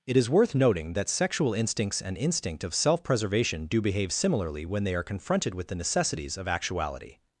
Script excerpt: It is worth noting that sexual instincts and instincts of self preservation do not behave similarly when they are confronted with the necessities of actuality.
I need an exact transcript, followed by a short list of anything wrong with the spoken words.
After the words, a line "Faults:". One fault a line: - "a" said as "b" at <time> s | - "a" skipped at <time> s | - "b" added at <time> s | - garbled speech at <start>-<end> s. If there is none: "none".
It is worth noting that sexual instincts and instinct of self preservation do behave similarly when they are confronted with the necessities of actuality.
Faults:
- "instincts" said as "instinct" at 2.2 s
- "not" skipped at 3.8 s